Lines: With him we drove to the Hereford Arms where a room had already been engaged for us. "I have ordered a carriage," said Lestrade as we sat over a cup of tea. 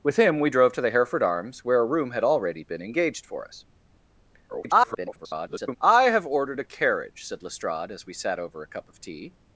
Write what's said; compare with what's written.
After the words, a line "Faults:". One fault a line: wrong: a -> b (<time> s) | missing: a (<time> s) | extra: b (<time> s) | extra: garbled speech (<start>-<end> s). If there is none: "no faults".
With him we drove to the Hereford Arms where a room had already been engaged for us. [garbled] "I have ordered a carriage," said Lestrade as we sat over a cup of tea.
Faults:
extra: garbled speech (4.5-5.8 s)